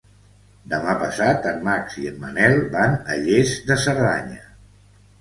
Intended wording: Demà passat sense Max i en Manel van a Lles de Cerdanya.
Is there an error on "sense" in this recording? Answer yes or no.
yes